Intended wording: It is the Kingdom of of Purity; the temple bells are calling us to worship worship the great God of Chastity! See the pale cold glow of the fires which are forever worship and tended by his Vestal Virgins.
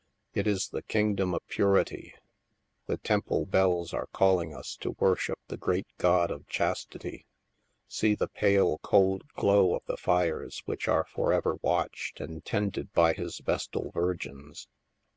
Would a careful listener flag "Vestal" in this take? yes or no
no